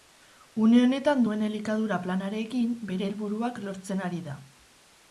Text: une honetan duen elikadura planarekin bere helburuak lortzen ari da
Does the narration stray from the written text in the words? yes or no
no